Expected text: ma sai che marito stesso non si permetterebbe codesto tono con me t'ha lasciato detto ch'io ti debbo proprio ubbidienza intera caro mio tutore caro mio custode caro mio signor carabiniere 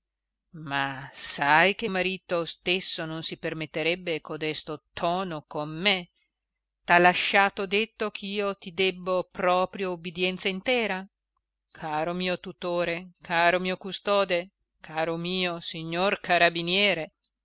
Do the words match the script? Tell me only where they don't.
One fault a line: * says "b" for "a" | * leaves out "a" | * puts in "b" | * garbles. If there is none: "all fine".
all fine